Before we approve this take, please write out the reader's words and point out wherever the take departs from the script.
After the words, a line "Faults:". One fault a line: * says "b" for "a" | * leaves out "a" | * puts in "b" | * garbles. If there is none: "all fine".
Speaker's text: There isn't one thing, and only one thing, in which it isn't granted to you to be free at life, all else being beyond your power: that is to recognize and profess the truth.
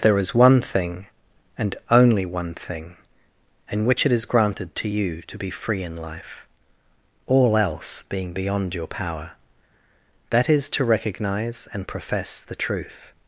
There is one thing, and only one thing, in which it is granted to you to be free in life, all else being beyond your power: that is to recognize and profess the truth.
Faults:
* says "is" for "isn't"
* says "is" for "isn't"
* says "in" for "at"